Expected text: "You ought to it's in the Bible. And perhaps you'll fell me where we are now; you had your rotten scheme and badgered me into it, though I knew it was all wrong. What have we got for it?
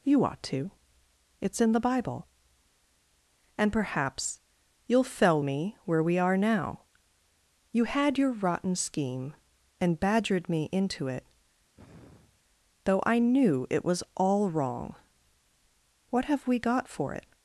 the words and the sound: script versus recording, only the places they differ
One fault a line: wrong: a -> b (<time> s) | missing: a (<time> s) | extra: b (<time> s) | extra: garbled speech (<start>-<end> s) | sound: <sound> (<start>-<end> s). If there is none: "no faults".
sound: sigh (11.8-12.4 s)